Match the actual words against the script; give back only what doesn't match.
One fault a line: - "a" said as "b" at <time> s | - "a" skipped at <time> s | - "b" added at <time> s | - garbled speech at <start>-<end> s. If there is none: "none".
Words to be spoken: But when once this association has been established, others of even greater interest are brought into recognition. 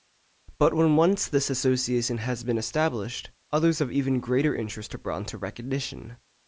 none